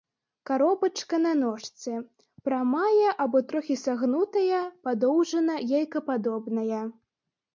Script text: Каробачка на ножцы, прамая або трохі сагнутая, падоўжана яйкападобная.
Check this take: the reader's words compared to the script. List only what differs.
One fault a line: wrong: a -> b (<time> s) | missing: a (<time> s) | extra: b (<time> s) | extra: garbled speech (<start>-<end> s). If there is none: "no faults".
no faults